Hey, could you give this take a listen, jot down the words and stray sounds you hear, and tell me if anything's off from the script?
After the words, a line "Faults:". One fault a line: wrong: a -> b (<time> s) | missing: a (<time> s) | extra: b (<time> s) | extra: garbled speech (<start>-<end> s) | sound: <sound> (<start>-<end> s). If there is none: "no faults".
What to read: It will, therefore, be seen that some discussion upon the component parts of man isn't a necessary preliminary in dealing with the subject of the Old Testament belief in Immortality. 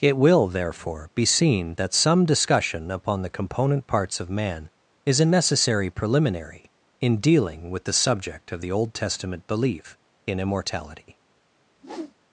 It will, therefore, be seen that some discussion upon the component parts of man is a necessary preliminary in dealing with the subject of the Old Testament belief in Immortality.
Faults:
wrong: isn't -> is (5.0 s)
sound: whoosh (11.7-12.1 s)